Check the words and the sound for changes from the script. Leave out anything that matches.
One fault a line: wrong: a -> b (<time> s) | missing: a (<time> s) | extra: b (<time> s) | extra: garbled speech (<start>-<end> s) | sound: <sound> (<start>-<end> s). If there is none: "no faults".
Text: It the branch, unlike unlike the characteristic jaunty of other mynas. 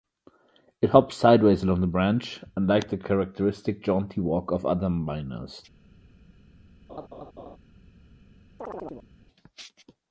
extra: hops sideways along (0.9 s)
missing: unlike (2.9 s)
extra: walk (4.2 s)
sound: laugh (6.9-7.6 s)
sound: chirp (8.6-9.1 s)